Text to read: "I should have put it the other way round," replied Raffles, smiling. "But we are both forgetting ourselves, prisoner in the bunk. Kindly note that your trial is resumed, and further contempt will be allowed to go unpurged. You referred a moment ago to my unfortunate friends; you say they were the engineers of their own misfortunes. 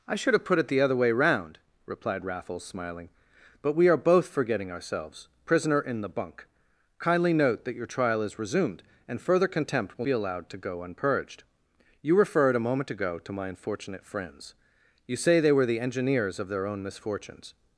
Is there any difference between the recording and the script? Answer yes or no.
no